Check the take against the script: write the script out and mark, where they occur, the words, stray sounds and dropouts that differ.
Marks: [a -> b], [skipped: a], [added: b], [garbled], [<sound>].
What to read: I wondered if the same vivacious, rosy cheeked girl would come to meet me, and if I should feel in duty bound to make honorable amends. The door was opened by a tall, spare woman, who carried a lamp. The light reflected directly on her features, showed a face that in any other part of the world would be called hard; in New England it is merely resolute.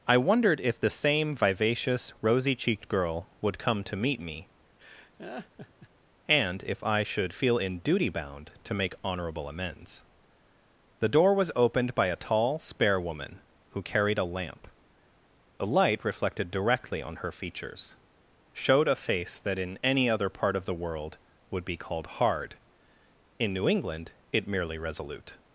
I wondered if the same vivacious, rosy cheeked girl would come to meet me, [laugh] and if I should feel in duty bound to make honorable amends. The door was opened by a tall, spare woman, who carried a lamp. The light reflected directly on her features, showed a face that in any other part of the world would be called hard; in New England it [skipped: is] merely resolute.